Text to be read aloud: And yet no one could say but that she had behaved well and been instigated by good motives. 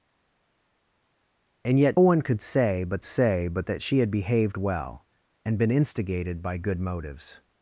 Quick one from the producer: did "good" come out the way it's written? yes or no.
yes